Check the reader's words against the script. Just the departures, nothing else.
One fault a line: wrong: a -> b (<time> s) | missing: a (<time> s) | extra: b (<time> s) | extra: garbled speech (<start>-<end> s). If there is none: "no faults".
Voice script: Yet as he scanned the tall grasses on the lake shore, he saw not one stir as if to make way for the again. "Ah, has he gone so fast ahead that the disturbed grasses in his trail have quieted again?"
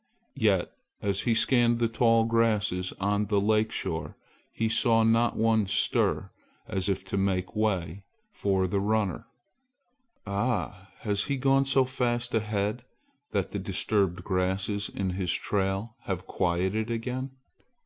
wrong: again -> runner (8.8 s)